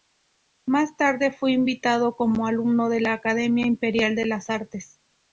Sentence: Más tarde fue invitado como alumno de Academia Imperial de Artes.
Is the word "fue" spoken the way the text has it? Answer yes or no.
yes